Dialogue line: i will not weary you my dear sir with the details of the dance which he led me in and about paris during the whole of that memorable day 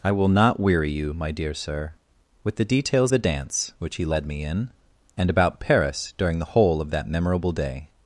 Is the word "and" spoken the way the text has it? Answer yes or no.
yes